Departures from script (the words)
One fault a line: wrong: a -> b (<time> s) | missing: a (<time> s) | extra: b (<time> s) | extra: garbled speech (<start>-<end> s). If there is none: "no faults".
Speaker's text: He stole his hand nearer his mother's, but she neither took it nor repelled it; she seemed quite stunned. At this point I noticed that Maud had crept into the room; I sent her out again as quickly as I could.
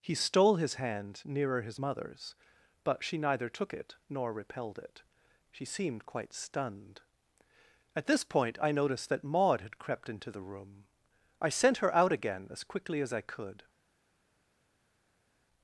no faults